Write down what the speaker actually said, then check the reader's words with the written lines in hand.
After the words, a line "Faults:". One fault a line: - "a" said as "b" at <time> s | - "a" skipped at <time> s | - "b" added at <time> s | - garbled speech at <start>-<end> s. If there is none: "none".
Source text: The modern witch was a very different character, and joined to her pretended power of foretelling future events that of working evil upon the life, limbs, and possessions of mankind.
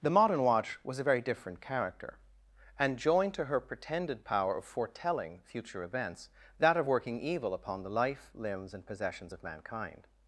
The modern watch was a very different character, and joined to her pretended power of foretelling future events that of working evil upon the life, limbs, and possessions of mankind.
Faults:
- "witch" said as "watch" at 0.4 s